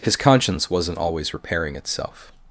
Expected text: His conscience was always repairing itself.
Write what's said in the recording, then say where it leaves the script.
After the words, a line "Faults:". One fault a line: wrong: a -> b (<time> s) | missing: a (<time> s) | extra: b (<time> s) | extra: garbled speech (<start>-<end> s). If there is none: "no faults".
His conscience wasn't always repairing itself.
Faults:
wrong: was -> wasn't (0.7 s)